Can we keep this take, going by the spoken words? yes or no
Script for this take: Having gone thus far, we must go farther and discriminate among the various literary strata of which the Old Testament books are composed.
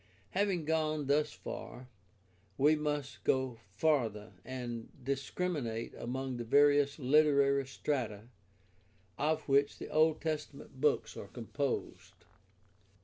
yes